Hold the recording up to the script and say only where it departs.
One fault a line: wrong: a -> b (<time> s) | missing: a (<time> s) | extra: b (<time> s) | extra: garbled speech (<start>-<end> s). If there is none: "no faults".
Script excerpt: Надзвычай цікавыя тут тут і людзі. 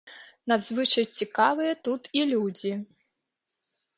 missing: тут (2.0 s)